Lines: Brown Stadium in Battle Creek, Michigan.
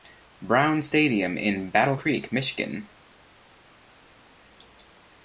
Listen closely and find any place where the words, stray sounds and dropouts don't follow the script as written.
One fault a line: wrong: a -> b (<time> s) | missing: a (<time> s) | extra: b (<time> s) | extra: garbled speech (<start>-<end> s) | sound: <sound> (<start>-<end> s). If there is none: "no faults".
no faults